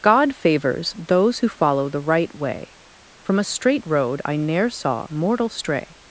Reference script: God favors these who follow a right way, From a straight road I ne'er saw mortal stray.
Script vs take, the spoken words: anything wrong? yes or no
yes